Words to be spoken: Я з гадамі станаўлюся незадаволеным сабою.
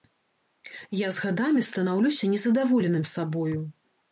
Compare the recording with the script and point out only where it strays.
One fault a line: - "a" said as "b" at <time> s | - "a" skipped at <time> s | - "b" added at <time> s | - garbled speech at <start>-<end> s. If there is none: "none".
none